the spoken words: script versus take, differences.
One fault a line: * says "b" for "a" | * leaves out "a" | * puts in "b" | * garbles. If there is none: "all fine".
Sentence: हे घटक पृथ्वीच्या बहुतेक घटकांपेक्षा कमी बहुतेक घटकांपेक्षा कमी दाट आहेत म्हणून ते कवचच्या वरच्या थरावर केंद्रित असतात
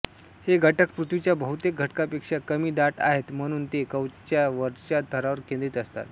* leaves out "बहुतेक घटकांपेक्षा कमी"